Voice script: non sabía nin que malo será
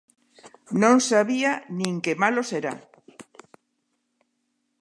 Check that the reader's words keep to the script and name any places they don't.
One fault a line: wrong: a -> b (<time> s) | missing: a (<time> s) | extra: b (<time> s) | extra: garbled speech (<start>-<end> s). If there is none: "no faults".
no faults